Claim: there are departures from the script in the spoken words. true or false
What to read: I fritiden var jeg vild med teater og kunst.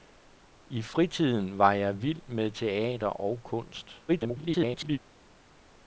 true